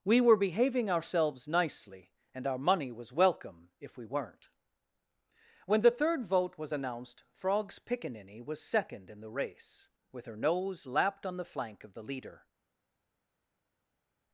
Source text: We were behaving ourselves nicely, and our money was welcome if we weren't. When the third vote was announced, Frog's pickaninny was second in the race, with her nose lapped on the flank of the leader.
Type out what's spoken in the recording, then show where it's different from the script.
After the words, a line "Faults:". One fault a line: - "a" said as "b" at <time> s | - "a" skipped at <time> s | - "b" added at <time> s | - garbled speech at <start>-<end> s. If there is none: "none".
We were behaving ourselves nicely, and our money was welcome if we weren't. When the third vote was announced, Frog's pickaninny was second in the race, with her nose lapped on the flank of the leader.
Faults:
none